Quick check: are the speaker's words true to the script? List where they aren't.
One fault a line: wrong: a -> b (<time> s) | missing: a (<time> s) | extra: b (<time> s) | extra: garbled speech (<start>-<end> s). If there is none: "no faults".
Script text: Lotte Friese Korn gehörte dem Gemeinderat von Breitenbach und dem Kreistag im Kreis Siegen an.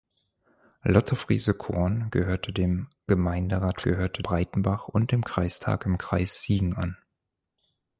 wrong: von -> gehörte (3.8 s)